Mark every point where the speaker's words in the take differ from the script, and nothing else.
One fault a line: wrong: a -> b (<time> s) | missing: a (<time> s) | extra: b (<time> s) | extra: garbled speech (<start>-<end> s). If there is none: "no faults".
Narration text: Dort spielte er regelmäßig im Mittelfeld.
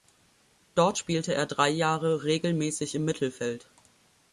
extra: drei Jahre (1.5 s)